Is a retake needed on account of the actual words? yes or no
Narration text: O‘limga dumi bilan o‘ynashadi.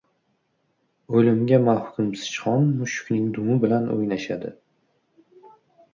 yes